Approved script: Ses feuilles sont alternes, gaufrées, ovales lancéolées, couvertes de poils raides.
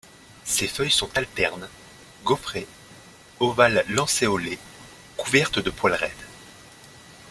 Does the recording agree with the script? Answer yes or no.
yes